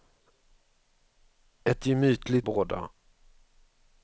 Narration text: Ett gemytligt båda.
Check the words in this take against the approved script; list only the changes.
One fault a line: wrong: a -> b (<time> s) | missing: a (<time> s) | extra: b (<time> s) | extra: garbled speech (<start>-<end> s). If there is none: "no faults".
no faults